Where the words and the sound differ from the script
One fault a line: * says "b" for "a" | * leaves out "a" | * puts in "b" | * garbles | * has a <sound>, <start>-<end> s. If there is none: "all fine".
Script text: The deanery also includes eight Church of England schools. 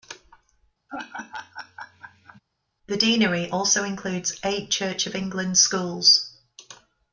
* has a laugh, 0.9-2.4 s